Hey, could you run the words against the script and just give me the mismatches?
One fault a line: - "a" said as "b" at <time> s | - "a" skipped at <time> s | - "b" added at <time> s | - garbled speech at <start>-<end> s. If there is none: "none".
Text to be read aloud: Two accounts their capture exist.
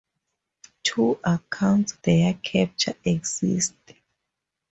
none